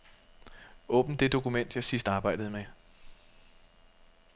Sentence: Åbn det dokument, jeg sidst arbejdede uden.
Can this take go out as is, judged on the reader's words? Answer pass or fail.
fail